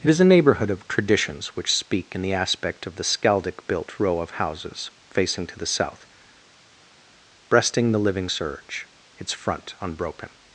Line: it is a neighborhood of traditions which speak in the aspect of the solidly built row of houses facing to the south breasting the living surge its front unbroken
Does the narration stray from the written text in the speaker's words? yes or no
yes